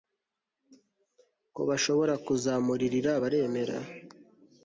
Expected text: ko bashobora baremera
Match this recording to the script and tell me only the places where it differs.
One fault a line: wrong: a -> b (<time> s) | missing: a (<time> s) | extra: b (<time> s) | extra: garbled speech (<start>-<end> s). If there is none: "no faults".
extra: kuzamuririra (2.2 s)